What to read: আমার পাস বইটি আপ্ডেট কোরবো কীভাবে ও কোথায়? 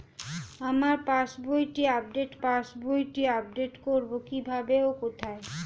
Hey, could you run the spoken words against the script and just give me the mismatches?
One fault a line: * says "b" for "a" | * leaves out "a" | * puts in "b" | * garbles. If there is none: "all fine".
* puts in "পাস বইটি আপ্ডেট"